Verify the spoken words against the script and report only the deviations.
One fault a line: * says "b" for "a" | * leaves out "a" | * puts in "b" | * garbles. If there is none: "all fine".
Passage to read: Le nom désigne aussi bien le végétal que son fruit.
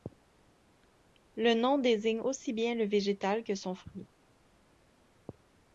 all fine